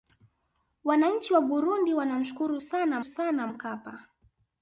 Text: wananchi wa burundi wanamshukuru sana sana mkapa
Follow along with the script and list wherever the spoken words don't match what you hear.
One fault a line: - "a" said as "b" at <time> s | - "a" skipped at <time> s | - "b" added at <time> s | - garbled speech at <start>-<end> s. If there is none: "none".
none